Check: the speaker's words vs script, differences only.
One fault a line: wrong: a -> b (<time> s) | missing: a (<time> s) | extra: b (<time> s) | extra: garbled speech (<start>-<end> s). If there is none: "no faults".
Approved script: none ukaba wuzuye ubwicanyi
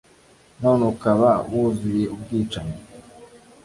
no faults